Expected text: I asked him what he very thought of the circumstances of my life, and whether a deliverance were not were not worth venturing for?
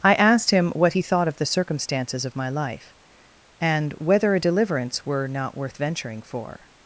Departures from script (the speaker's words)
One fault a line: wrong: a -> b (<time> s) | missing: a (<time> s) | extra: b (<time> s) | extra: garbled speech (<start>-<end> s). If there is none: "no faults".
missing: very (1.0 s)
missing: were not (5.6 s)